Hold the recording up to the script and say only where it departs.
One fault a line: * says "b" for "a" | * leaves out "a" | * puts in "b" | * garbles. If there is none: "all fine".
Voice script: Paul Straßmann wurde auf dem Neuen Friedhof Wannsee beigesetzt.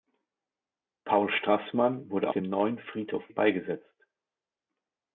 * leaves out "auf"
* leaves out "Wannsee"